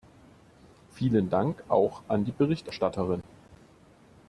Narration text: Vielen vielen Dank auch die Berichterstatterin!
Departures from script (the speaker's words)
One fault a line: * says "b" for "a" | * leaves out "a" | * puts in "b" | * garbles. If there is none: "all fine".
* leaves out "vielen"
* puts in "an"